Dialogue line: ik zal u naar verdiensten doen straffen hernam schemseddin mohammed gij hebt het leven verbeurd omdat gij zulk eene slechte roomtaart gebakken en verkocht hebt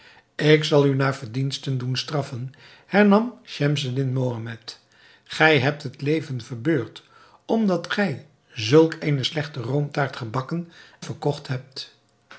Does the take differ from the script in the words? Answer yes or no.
yes